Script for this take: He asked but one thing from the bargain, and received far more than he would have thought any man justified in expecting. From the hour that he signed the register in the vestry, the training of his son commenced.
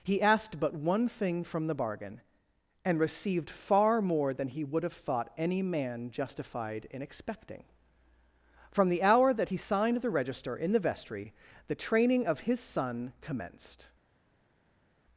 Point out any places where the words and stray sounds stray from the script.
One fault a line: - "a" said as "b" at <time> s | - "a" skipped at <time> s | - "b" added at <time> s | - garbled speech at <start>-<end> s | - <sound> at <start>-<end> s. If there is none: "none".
none